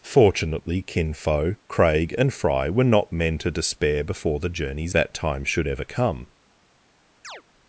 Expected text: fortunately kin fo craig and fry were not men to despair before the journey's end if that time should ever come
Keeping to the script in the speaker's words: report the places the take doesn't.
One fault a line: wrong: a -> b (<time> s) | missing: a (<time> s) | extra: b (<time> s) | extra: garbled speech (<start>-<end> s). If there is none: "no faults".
missing: end if (5.0 s)